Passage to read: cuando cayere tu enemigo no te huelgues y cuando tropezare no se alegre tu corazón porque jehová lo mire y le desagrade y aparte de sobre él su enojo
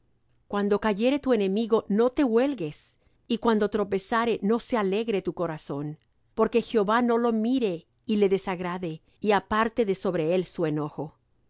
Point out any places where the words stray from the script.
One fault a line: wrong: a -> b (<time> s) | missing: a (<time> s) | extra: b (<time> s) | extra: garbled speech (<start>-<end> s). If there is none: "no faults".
extra: no (7.0 s)